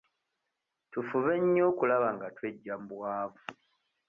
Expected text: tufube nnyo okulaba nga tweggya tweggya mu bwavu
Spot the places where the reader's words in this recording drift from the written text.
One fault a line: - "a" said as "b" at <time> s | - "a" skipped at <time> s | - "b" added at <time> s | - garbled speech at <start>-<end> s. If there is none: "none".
- "tweggya" skipped at 2.7 s